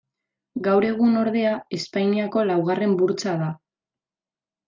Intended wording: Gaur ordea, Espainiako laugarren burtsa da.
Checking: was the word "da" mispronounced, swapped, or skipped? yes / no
no